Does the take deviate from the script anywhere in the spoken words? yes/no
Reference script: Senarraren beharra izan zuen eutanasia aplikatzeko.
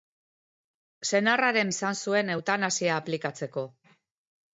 yes